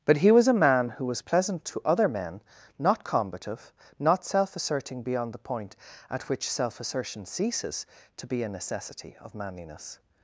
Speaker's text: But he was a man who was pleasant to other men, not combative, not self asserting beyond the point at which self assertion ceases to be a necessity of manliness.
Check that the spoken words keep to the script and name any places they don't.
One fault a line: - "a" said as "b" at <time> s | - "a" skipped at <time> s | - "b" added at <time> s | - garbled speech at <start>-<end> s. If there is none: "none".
none